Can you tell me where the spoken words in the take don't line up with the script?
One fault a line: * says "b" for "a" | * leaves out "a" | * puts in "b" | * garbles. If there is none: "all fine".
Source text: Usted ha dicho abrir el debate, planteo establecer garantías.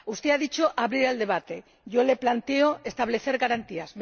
* puts in "yo le"